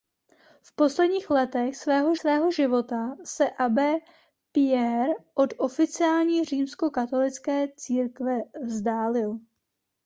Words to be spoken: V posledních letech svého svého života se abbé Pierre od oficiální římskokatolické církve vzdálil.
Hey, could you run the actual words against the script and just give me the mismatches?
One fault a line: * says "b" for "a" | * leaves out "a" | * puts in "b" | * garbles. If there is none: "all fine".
all fine